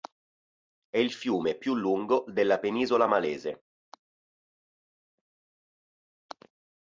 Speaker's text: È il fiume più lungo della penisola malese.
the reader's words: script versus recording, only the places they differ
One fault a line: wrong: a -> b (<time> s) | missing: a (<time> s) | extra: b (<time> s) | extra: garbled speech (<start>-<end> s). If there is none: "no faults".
no faults